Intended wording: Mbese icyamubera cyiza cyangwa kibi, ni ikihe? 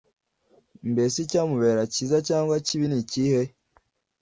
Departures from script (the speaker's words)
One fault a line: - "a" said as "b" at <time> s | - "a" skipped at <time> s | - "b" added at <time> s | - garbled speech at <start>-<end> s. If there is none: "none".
none